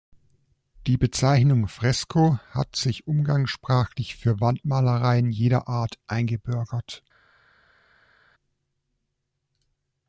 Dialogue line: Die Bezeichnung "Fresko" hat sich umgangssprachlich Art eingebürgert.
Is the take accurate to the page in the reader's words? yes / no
no